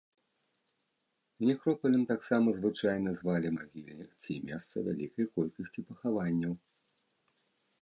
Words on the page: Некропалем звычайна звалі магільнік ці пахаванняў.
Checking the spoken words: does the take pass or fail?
fail